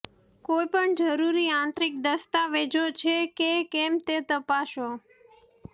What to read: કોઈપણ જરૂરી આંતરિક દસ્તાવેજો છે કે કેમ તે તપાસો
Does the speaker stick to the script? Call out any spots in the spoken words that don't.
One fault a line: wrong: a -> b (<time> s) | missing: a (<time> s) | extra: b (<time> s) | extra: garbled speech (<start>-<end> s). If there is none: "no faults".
no faults